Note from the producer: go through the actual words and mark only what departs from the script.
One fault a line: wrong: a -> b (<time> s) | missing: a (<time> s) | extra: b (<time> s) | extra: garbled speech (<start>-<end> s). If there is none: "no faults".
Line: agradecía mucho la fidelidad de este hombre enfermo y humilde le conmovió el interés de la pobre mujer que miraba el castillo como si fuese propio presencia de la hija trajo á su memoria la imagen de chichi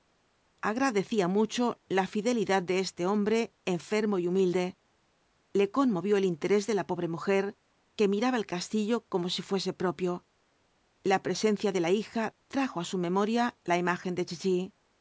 extra: la (11.0 s)